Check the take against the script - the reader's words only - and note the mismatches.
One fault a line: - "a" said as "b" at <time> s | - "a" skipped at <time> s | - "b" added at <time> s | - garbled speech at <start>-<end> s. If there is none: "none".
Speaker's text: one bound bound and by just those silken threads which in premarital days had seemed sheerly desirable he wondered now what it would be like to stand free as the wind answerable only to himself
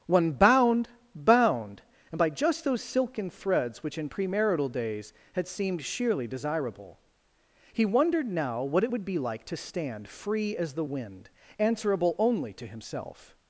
none